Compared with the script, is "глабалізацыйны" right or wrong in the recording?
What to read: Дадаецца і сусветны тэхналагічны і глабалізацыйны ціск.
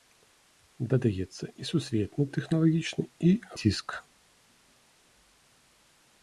wrong